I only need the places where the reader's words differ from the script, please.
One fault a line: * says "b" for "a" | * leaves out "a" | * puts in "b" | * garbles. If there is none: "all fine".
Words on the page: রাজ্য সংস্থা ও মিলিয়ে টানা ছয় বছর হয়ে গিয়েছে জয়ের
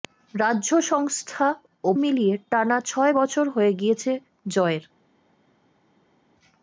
all fine